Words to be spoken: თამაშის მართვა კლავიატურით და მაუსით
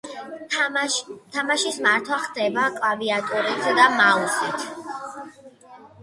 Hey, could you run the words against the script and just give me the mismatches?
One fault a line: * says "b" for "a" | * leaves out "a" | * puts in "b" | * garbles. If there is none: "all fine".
* puts in "ხდება"